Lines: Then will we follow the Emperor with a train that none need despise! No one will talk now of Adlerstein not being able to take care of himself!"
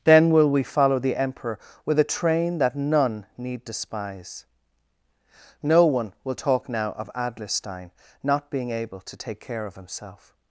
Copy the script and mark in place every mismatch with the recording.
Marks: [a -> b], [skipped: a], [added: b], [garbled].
Then will we follow the Emperor with a train that none need despise! No one will talk now of Adlerstein not being able to take care of himself!"